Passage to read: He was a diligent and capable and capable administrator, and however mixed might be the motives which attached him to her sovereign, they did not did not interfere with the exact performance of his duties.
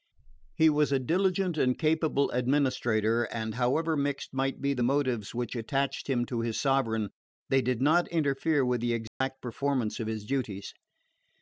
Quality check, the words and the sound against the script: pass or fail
fail